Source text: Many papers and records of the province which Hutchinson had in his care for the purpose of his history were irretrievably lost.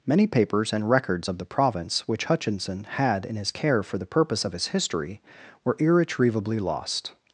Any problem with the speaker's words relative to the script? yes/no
no